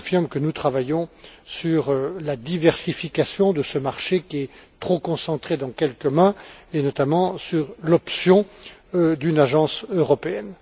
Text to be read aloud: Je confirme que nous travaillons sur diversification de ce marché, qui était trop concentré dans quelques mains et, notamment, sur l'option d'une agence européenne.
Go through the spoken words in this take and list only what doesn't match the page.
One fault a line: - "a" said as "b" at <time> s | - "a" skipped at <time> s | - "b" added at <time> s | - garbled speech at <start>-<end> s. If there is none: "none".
- "la" added at 2.2 s
- "était" said as "est" at 4.4 s